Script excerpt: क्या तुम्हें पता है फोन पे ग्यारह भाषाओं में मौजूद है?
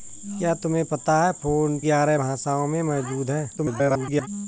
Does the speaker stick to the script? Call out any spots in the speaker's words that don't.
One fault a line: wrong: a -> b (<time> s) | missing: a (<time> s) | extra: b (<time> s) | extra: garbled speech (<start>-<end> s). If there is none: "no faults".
missing: पे (1.8 s)
extra: garbled speech (3.6-4.3 s)